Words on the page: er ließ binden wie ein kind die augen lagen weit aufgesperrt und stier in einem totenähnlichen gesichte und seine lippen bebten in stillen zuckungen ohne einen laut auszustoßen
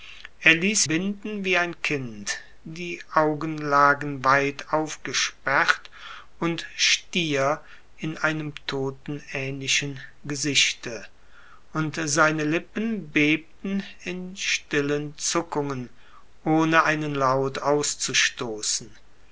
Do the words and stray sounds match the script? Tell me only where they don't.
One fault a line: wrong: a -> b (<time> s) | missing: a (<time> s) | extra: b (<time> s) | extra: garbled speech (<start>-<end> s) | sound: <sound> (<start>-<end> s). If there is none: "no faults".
no faults